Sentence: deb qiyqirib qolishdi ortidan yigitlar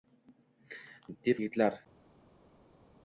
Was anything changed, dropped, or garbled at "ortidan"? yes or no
yes